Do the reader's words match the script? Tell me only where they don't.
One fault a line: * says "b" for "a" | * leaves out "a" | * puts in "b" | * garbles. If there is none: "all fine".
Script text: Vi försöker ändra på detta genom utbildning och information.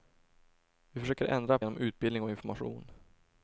* leaves out "på detta"